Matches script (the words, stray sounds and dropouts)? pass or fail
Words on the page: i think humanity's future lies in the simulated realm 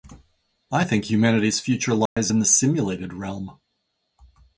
fail